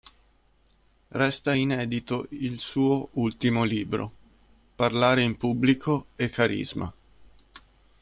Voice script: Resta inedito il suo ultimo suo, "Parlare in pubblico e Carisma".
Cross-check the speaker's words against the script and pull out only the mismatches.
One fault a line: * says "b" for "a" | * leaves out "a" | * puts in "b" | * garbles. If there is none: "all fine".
* says "libro" for "suo"